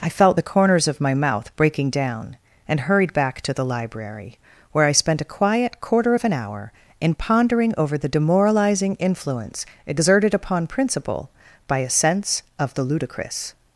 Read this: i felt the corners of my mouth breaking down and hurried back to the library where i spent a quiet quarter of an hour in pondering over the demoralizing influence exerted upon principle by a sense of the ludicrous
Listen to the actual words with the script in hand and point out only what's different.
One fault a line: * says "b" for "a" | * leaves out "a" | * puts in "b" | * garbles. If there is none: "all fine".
all fine